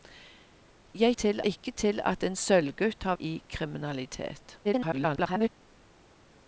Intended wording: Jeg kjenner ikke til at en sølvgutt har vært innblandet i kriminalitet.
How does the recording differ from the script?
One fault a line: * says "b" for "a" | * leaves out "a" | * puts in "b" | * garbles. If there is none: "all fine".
* says "til" for "kjenner"
* leaves out "vært innblandet"
* garbles